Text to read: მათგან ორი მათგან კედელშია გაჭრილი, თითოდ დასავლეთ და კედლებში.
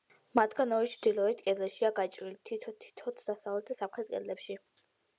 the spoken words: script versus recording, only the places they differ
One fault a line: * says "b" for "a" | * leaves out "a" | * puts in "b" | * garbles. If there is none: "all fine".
* says "ჩრდილოეთ" for "მათგან"
* puts in "თითო"
* puts in "სამხრეთ"